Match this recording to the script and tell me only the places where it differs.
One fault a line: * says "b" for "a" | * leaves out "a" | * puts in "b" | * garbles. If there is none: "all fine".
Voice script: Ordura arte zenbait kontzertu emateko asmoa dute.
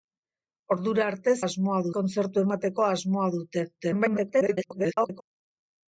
* says "asmoa" for "zenbait"
* garbles